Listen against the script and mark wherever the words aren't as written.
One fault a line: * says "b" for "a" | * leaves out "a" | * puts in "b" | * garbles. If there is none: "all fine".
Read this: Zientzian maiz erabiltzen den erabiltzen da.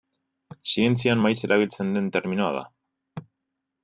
* says "terminoa" for "erabiltzen"